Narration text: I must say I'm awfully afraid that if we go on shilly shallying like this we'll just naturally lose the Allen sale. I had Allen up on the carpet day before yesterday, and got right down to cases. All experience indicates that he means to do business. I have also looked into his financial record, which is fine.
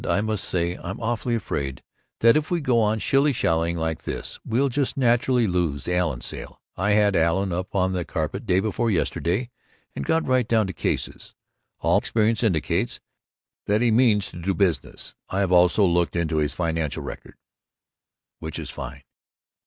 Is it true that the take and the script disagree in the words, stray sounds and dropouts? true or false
false